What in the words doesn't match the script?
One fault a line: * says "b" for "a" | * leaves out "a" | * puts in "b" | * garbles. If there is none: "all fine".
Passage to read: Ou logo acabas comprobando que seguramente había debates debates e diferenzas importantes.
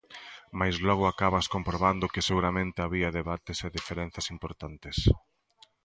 * says "Mais" for "Ou"
* leaves out "debates"